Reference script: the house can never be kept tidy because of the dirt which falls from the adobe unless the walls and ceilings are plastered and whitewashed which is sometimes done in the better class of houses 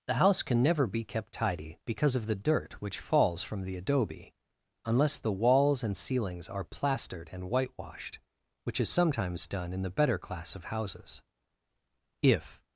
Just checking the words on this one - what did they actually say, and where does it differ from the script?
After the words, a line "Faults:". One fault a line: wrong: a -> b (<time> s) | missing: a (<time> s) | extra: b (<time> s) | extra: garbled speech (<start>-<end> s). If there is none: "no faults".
the house can never be kept tidy because of the dirt which falls from the adobe unless the walls and ceilings are plastered and whitewashed which is sometimes done in the better class of houses if
Faults:
extra: if (12.2 s)